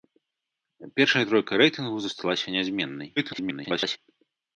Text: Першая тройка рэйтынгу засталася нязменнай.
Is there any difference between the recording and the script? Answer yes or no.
yes